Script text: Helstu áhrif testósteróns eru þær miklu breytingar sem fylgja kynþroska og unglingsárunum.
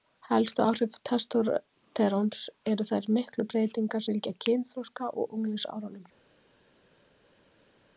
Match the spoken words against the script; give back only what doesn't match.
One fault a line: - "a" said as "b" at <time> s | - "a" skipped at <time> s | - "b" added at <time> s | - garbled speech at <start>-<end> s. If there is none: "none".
- "sem" skipped at 4.1 s